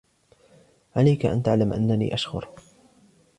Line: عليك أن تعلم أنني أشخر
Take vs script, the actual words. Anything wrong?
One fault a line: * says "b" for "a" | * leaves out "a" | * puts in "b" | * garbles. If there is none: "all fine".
all fine